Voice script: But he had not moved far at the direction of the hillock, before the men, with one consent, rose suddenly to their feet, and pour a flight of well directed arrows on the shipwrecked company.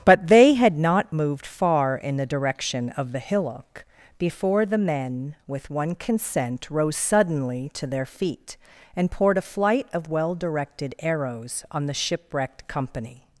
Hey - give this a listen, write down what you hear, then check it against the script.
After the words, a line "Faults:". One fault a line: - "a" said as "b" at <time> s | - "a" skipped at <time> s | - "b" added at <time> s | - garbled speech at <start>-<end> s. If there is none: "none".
But they had not moved far in the direction of the hillock, before the men, with one consent, rose suddenly to their feet, and poured a flight of well directed arrows on the shipwrecked company.
Faults:
- "he" said as "they" at 0.3 s
- "at" said as "in" at 1.9 s
- "pour" said as "poured" at 9.1 s